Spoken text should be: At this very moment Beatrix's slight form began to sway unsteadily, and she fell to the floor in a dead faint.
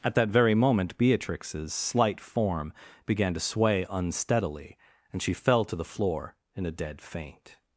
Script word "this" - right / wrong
wrong